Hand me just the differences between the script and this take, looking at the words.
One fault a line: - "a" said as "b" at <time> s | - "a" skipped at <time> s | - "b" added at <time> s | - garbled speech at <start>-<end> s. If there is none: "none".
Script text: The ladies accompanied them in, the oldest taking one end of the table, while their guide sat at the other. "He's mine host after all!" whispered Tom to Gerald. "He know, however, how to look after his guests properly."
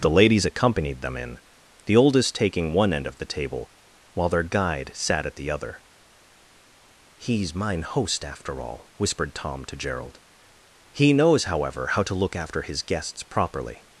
- "know" said as "knows" at 11.1 s